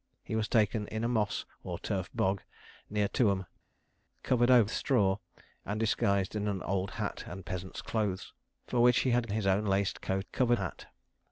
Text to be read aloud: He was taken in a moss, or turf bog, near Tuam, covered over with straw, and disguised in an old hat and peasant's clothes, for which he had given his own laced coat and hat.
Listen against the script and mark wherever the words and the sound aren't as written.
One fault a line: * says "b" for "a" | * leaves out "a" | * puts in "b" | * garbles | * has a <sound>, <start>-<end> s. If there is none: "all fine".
* leaves out "with"
* leaves out "given"
* says "covered" for "and"